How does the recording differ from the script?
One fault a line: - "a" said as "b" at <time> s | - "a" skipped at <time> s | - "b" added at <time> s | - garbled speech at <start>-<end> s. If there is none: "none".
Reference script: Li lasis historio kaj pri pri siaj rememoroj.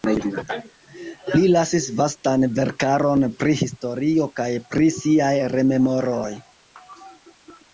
- "vastan verkaron pri" added at 2.0 s
- "pri" skipped at 4.9 s